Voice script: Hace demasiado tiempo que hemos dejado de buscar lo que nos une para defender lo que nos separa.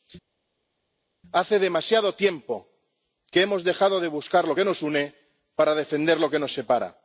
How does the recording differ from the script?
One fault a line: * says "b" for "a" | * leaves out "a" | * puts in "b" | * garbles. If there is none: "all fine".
all fine